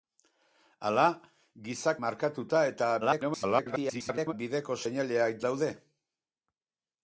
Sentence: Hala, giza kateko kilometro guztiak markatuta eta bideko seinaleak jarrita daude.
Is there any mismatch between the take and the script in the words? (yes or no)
yes